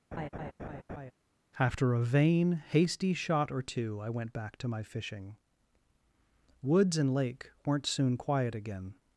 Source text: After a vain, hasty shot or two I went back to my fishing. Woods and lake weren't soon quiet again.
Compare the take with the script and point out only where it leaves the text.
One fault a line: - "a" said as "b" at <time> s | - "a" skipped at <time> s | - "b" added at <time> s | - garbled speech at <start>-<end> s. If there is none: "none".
none